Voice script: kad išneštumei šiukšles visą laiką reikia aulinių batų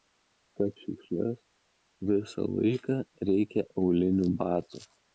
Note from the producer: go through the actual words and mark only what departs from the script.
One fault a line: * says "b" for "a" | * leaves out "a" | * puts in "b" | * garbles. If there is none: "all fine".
* leaves out "išneštumei"